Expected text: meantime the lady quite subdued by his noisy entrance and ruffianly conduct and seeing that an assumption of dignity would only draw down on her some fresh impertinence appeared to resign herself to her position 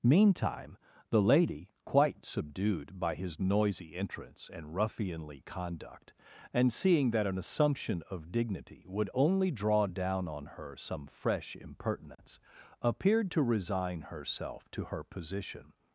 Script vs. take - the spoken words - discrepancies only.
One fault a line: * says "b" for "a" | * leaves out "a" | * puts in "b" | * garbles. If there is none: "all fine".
all fine